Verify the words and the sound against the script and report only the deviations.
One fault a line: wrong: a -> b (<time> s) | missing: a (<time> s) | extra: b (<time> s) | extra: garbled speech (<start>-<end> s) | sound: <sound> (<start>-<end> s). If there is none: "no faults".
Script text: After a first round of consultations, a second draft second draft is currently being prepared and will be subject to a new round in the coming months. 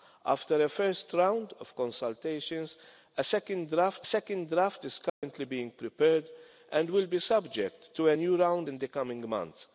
sound: dropout (5.1-5.2 s)